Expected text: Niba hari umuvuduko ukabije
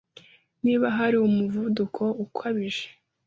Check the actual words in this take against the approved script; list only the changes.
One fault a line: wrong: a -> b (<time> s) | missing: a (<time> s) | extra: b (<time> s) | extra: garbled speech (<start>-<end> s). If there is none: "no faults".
no faults